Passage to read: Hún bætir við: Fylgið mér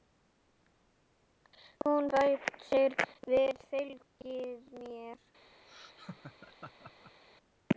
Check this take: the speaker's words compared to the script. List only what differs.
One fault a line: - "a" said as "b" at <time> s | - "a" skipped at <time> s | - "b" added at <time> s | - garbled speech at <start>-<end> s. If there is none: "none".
none